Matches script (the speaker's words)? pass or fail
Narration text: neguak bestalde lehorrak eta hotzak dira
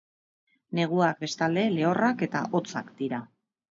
pass